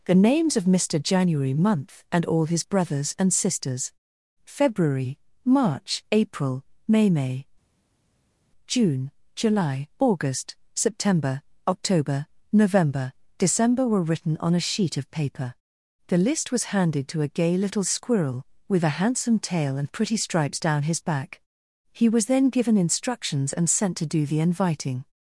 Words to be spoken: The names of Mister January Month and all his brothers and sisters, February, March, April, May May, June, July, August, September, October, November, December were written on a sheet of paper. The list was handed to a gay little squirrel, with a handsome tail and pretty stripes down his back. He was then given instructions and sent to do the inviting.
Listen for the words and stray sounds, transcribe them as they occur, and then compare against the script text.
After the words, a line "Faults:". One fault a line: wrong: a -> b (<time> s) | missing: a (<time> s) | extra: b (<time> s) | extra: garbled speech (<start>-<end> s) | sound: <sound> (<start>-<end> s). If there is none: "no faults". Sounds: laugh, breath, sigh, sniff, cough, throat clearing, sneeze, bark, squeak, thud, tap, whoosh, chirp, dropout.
The names of Mister January Month and all his brothers and sisters, February, March, April, May May, June, July, August, September, October, November, December were written on a sheet of paper. The list was handed to a gay little squirrel, with a handsome tail and pretty stripes down his back. He was then given instructions and sent to do the inviting.
Faults:
no faults